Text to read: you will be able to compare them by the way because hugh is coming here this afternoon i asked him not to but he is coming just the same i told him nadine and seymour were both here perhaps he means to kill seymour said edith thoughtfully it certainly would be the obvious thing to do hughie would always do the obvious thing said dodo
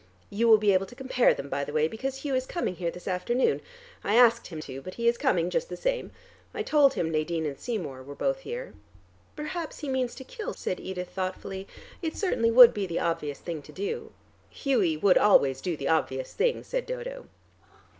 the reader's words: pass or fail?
fail